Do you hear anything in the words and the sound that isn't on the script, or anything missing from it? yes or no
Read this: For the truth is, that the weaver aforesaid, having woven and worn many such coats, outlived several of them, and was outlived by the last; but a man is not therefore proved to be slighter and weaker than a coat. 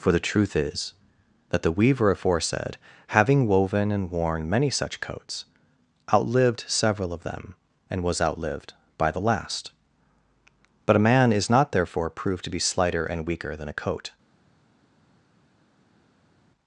no